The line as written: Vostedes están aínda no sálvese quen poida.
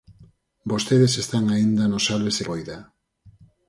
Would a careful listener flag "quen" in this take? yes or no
yes